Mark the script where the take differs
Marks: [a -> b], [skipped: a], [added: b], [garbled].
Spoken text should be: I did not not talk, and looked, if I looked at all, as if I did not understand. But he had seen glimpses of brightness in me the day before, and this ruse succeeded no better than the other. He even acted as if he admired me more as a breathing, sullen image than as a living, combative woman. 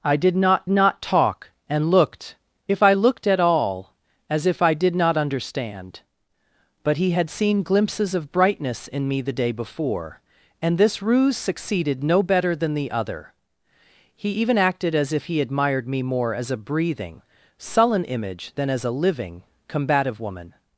I did not not talk, and looked, if I looked at all, as if I did not understand. But he had seen glimpses of brightness in me the day before, and this ruse succeeded no better than the other. He even acted as if he admired me more as a breathing, sullen image than as a living, combative woman.